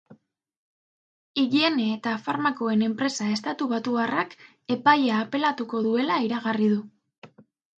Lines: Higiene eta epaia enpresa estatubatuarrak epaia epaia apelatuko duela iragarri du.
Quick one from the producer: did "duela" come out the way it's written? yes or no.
yes